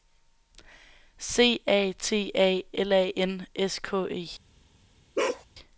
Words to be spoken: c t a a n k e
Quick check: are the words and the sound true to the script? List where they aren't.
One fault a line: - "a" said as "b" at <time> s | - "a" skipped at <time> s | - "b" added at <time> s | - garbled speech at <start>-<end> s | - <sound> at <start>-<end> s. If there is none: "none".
- "a" added at 1.7 s
- "l" added at 2.7 s
- "s" added at 3.5 s
- bark at 5.2-5.5 s